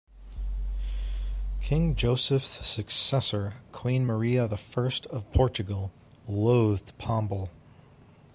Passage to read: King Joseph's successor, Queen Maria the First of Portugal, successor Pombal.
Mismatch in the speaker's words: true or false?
true